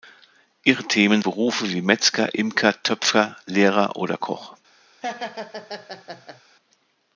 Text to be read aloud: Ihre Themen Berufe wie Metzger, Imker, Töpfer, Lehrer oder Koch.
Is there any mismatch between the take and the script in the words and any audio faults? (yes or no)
yes